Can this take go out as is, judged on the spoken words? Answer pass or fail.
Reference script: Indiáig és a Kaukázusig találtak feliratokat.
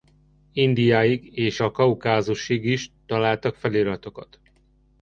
fail